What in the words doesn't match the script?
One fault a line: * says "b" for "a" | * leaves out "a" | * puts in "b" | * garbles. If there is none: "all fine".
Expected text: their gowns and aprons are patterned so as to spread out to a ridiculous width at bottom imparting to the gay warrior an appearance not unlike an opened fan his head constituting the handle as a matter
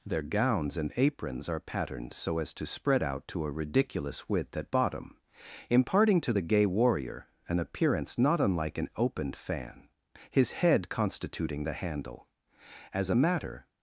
all fine